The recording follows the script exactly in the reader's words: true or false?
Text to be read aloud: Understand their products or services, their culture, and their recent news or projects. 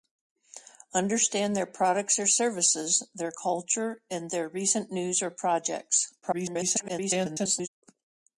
false